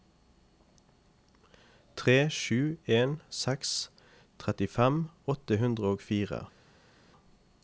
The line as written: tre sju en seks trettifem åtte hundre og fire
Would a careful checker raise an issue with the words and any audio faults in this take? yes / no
no